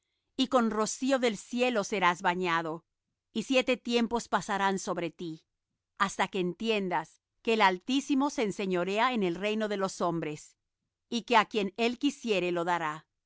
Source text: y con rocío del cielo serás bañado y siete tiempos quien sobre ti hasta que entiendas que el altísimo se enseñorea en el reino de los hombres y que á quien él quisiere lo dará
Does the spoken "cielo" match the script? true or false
true